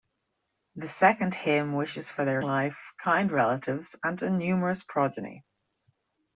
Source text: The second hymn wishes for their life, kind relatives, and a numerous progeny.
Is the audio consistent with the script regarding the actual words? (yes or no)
yes